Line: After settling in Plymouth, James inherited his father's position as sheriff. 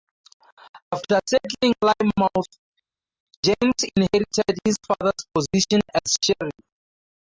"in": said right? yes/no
no